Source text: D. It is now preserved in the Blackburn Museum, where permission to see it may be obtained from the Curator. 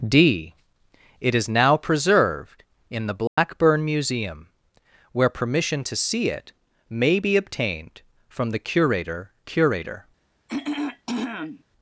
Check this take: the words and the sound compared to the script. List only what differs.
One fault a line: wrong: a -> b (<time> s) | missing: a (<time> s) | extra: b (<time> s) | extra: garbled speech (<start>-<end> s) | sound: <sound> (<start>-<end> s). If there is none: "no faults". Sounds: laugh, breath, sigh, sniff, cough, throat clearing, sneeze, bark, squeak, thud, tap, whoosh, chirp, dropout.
sound: dropout (3.3-3.4 s)
extra: Curator (9.4 s)
sound: throat clearing (10.5-11.6 s)